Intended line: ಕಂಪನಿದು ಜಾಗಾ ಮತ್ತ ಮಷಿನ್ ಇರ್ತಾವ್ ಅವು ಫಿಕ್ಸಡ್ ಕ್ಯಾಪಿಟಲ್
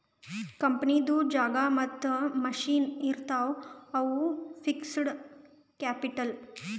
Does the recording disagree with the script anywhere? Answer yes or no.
no